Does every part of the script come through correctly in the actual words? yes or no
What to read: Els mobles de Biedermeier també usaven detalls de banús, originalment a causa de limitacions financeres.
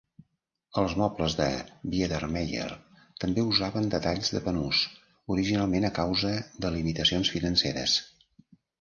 yes